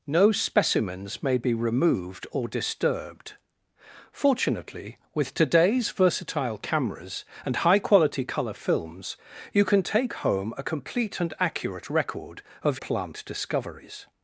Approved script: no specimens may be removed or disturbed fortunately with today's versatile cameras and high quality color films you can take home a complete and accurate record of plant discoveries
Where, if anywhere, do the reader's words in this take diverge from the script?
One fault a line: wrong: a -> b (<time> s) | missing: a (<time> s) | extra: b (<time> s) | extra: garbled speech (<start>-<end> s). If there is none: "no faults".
no faults